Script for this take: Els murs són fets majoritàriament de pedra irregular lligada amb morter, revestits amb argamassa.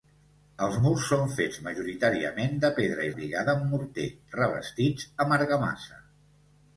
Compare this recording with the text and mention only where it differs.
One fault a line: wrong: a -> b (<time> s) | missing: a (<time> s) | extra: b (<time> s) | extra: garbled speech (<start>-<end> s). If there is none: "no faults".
missing: irregular (3.1 s)